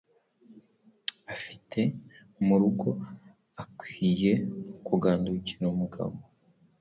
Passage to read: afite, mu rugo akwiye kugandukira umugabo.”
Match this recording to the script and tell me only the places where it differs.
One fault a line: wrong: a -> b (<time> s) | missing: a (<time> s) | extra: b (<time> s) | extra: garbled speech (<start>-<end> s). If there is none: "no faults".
no faults